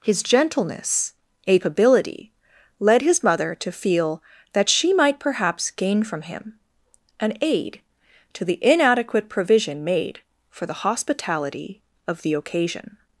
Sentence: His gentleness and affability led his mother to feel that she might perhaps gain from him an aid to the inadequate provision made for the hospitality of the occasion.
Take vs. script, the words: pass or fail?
fail